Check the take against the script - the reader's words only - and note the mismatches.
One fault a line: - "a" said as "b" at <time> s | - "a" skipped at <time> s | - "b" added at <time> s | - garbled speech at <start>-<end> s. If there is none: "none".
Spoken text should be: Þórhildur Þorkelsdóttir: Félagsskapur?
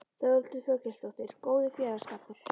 - "Góður" added at 1.5 s